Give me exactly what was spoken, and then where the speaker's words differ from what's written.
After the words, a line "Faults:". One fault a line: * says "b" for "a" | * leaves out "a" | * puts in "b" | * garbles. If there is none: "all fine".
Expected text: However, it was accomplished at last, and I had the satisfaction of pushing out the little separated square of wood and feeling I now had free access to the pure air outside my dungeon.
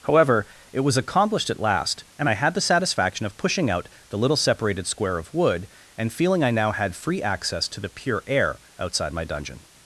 However, it was accomplished at last, and I had the satisfaction of pushing out the little separated square of wood and feeling I now had free access to the pure air outside my dungeon.
Faults:
all fine